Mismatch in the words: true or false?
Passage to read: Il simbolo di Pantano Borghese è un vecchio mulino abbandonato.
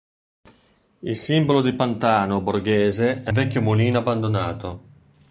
true